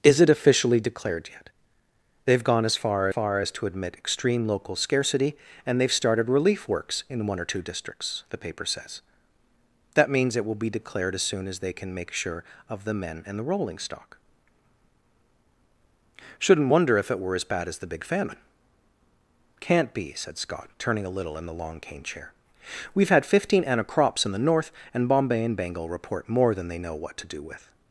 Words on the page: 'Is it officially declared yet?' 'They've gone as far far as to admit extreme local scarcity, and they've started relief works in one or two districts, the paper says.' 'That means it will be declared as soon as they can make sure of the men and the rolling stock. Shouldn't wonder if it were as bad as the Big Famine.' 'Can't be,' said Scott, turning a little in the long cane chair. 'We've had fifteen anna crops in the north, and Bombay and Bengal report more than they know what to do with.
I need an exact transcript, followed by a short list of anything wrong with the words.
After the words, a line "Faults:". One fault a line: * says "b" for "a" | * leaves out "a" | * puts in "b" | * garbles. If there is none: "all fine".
'Is it officially declared yet?' 'They've gone as far far as to admit extreme local scarcity, and they've started relief works in one or two districts, the paper says.' 'That means it will be declared as soon as they can make sure of the men and the rolling stock. Shouldn't wonder if it were as bad as the Big Famine.' 'Can't be,' said Scott, turning a little in the long cane chair. 'We've had fifteen anna crops in the north, and Bombay and Bengal report more than they know what to do with.
Faults:
all fine